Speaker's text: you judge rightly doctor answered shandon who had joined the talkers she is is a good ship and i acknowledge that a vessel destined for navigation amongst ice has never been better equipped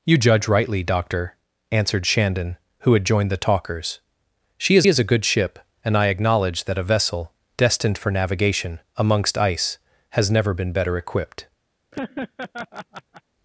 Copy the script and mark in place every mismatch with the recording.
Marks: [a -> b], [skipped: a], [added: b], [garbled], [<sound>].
you judge rightly doctor answered shandon who had joined the talkers she is is a good ship and i acknowledge that a vessel destined for navigation amongst ice has never been better equipped [laugh]